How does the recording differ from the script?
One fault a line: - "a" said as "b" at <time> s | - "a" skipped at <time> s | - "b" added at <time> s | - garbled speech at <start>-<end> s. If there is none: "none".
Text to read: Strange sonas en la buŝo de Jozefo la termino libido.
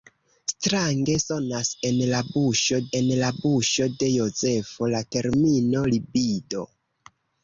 - "en la buŝo" added at 3.0 s